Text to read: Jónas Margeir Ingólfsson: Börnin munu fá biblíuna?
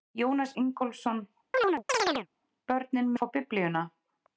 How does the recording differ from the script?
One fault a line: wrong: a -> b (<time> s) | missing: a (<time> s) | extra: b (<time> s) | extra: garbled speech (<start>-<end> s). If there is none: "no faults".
missing: Margeir (0.6 s)
missing: munu (3.1 s)